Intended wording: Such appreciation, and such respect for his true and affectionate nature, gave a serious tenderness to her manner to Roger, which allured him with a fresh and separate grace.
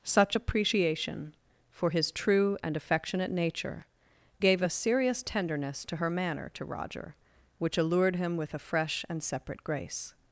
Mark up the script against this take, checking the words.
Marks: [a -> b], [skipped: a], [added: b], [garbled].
Such appreciation, [skipped: and such respect] for his true and affectionate nature, gave a serious tenderness to her manner to Roger, which allured him with a fresh and separate grace.